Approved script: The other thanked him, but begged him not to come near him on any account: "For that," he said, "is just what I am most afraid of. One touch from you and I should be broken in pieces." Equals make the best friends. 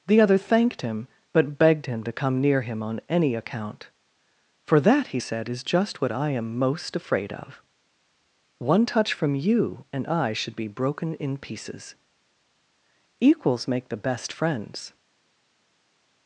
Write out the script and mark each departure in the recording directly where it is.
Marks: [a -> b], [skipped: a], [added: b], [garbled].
The other thanked him, but begged him [skipped: not] to come near him on any account: "For that," he said, "is just what I am most afraid of. One touch from you and I should be broken in pieces." Equals make the best friends.